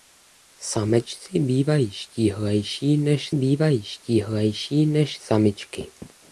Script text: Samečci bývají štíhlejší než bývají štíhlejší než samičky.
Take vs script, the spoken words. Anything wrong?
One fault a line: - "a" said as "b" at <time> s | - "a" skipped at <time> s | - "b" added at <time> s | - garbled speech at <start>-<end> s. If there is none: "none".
none